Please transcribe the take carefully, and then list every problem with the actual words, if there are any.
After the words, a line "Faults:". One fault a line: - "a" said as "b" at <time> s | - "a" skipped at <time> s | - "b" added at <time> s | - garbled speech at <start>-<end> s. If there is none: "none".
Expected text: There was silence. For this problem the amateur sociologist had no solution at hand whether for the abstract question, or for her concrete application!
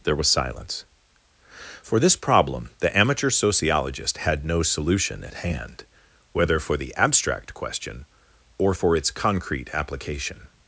There was silence. For this problem the amateur sociologist had no solution at hand whether for the abstract question, or for its concrete application!
Faults:
- "her" said as "its" at 8.9 s